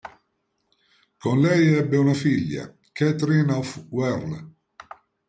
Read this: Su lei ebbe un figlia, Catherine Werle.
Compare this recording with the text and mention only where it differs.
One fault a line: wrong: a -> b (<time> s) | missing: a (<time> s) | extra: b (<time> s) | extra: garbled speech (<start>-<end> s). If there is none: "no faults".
wrong: Su -> Con (1.2 s)
wrong: un -> una (2.0 s)
extra: of (3.5 s)